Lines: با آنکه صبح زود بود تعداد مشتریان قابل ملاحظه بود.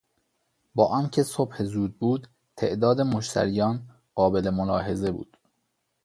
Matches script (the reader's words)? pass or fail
pass